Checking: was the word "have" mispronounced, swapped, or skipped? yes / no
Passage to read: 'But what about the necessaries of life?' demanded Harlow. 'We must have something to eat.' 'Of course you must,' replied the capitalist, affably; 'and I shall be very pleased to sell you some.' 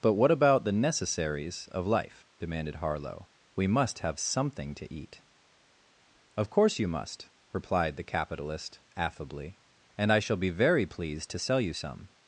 no